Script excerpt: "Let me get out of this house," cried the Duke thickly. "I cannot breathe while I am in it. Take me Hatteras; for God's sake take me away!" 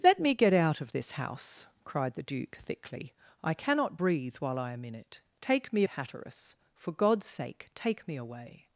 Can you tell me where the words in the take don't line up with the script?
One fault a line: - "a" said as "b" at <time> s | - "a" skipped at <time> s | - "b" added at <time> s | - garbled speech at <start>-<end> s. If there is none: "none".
none